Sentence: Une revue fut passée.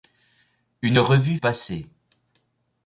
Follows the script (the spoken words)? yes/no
no